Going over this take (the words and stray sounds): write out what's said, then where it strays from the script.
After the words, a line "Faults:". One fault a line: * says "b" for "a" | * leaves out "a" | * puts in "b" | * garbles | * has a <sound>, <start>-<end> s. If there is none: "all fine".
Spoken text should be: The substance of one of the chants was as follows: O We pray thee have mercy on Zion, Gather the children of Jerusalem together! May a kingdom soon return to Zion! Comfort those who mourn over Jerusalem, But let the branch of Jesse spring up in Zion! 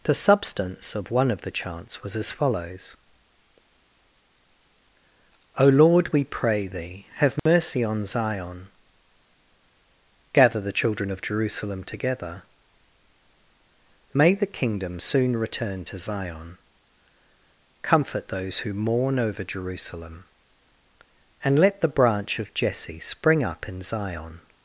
The substance of one of the chants was as follows: O Lord, we pray thee have mercy on Zion, Gather the children of Jerusalem together! May the kingdom soon return to Zion! Comfort those who mourn over Jerusalem, And let the branch of Jesse spring up in Zion!
Faults:
* puts in "Lord"
* has a dropout, 7.4-7.5 s
* says "the" for "a"
* says "And" for "But"